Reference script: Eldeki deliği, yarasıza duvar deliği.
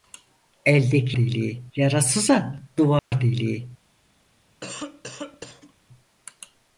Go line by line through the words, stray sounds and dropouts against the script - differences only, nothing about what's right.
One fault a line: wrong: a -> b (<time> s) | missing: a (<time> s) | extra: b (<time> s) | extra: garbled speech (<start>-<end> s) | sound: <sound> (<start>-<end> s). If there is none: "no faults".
sound: dropout (3.0-3.1 s)
sound: cough (4.6-5.7 s)